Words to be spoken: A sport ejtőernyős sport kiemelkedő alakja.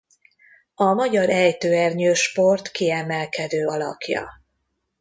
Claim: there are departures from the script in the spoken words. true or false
true